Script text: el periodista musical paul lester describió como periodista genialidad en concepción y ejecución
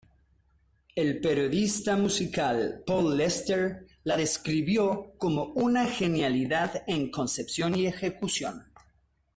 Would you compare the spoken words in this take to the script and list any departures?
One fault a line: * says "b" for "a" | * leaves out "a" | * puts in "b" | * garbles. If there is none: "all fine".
* puts in "la"
* says "una" for "periodista"